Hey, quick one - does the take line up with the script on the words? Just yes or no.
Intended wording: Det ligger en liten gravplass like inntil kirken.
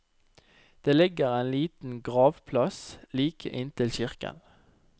yes